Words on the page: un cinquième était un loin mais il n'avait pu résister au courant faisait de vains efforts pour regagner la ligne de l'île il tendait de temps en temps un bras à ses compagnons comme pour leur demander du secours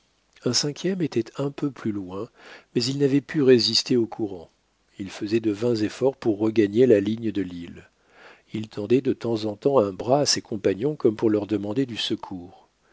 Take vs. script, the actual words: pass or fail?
fail